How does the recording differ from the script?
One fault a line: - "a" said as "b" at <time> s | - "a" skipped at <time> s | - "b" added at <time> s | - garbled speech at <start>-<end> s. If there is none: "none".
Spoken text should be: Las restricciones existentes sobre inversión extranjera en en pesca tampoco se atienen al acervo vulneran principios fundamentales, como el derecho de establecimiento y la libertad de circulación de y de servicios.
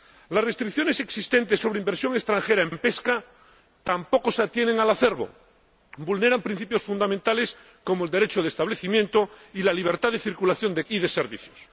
none